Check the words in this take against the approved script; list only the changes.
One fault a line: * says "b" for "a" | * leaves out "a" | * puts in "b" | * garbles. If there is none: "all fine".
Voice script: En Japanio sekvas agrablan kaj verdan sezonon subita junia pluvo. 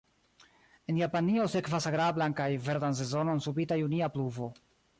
all fine